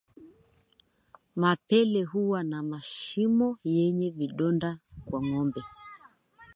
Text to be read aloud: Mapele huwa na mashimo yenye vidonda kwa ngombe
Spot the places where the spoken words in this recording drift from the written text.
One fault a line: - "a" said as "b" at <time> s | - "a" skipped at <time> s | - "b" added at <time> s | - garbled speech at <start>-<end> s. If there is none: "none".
none